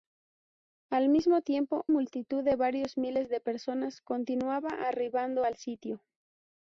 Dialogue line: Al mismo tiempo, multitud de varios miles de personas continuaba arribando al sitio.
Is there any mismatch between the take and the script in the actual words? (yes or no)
no